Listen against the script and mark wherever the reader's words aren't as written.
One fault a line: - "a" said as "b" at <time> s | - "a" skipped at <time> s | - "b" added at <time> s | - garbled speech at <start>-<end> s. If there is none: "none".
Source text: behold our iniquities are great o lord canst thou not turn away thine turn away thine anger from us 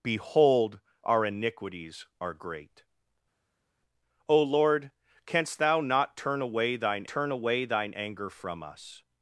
none